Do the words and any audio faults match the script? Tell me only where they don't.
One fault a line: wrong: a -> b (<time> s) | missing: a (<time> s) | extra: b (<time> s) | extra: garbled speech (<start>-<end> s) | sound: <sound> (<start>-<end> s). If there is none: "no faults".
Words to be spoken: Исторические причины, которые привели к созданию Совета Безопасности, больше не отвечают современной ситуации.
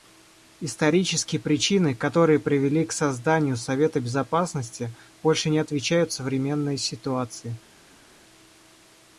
no faults